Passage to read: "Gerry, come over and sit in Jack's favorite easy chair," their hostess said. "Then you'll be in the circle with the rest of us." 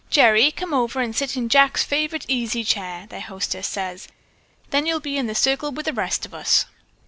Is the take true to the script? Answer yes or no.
yes